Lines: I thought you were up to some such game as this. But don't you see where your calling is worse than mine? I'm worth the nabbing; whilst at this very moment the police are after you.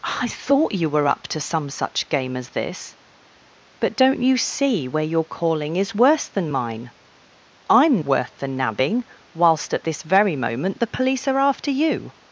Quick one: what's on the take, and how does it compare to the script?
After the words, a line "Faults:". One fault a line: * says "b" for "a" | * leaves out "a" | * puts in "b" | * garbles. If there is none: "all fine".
I thought you were up to some such game as this. But don't you see where your calling is worse than mine? I'm worth the nabbing; whilst at this very moment the police are after you.
Faults:
all fine